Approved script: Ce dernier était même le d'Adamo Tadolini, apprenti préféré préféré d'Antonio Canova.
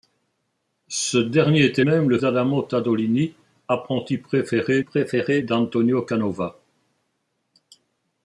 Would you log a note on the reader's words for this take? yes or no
no